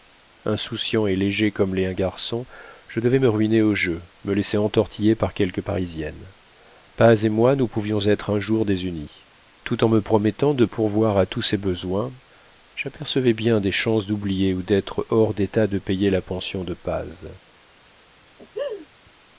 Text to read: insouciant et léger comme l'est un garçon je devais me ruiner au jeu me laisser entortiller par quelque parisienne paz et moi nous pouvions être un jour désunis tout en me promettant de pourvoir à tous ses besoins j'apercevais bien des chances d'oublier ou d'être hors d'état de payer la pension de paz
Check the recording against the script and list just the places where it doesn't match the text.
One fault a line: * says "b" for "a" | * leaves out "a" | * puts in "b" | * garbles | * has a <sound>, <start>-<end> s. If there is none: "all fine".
* has a laugh, 18.4-18.9 s